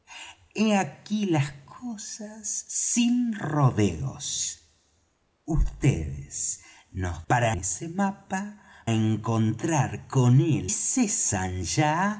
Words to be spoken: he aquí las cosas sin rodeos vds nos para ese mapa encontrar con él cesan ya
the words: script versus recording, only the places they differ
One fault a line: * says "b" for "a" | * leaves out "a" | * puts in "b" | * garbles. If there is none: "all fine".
all fine